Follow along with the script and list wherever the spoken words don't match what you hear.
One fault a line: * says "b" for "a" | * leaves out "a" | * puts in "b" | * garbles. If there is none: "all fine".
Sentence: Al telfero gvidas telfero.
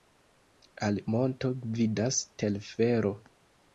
* says "monto" for "telfero"